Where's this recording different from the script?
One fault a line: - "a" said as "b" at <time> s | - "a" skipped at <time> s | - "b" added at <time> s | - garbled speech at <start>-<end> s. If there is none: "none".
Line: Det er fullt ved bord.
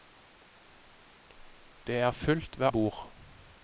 none